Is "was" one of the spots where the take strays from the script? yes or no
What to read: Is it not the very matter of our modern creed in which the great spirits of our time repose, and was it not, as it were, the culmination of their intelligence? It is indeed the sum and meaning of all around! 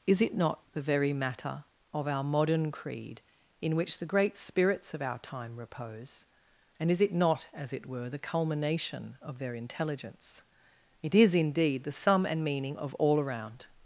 yes